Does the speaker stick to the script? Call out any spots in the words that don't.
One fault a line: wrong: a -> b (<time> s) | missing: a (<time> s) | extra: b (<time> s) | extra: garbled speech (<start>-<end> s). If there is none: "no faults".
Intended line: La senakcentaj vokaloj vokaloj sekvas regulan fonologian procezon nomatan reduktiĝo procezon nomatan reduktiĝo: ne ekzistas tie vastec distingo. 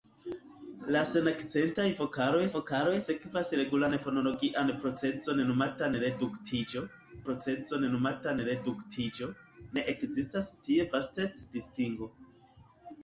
no faults